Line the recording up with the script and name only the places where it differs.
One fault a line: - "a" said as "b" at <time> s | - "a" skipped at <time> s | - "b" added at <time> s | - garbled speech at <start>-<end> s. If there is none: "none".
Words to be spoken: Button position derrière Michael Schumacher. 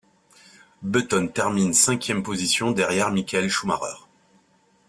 - "termine cinquième" added at 1.3 s